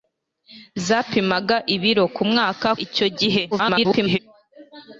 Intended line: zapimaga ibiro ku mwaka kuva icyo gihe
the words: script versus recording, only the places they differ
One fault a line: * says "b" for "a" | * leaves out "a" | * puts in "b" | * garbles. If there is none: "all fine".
* leaves out "kuva"
* garbles